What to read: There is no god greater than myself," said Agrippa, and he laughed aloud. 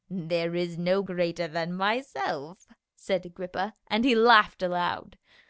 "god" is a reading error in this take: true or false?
true